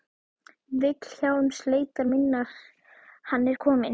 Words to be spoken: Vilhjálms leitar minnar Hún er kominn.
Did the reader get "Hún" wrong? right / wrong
wrong